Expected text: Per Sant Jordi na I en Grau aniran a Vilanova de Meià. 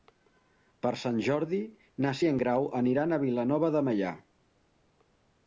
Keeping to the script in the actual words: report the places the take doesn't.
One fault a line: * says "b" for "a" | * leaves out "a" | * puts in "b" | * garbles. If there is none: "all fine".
all fine